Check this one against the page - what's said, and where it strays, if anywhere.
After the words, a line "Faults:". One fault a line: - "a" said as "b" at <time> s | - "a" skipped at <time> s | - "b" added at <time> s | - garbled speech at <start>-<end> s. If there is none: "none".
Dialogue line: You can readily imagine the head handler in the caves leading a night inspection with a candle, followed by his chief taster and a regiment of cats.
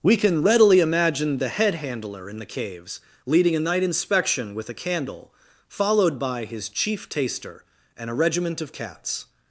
We can readily imagine the head handler in the caves leading a night inspection with a candle, followed by his chief taster and a regiment of cats.
Faults:
- "You" said as "We" at 0.0 s